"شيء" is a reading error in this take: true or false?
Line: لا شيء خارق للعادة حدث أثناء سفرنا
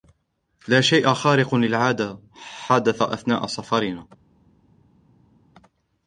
false